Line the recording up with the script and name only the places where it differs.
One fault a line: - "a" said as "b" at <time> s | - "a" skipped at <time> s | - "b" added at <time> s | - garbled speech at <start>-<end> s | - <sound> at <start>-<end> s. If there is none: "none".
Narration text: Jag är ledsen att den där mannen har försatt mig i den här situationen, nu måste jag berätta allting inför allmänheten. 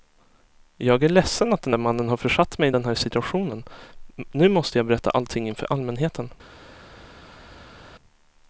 none